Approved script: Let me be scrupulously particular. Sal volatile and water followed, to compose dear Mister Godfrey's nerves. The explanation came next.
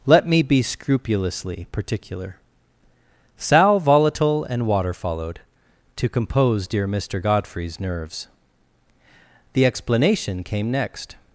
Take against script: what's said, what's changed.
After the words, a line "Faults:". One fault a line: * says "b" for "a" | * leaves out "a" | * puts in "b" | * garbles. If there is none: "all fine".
Let me be scrupulously particular. Sal volatile and water followed, to compose dear Mister Godfrey's nerves. The explanation came next.
Faults:
all fine